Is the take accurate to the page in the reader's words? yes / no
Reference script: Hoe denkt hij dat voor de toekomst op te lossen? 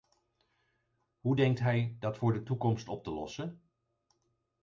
yes